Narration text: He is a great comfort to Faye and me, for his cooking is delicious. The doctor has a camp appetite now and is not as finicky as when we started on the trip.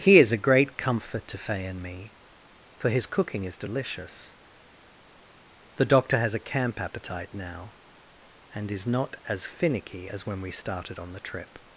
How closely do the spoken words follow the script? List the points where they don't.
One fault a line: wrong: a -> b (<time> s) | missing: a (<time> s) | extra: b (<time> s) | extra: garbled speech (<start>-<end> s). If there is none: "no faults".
no faults